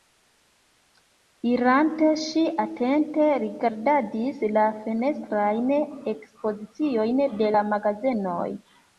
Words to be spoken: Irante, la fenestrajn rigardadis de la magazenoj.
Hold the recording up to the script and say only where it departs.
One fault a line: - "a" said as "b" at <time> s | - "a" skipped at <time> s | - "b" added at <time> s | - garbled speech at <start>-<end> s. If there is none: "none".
- "ŝi atente rigardadis" added at 2.2 s
- "rigardadis" said as "ekspoziciojn" at 6.1 s